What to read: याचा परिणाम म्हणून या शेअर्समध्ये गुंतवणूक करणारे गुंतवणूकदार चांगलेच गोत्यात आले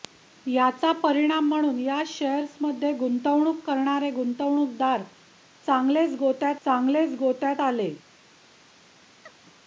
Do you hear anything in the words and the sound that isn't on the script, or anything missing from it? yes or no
yes